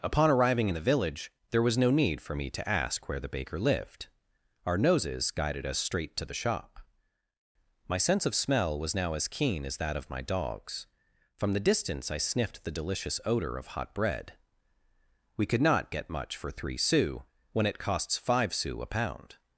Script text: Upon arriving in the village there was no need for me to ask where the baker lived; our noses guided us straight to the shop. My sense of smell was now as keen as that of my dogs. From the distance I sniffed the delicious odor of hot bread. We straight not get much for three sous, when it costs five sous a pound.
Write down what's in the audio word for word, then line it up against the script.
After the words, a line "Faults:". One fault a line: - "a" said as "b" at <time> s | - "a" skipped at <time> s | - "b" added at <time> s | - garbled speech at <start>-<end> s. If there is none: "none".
Upon arriving in the village there was no need for me to ask where the baker lived; our noses guided us straight to the shop. My sense of smell was now as keen as that of my dogs. From the distance I sniffed the delicious odor of hot bread. We could not get much for three sous, when it costs five sous a pound.
Faults:
- "straight" said as "could" at 15.4 s